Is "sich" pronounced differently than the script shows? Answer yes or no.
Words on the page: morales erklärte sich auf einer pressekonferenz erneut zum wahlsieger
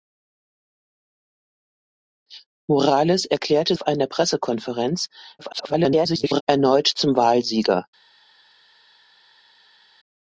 yes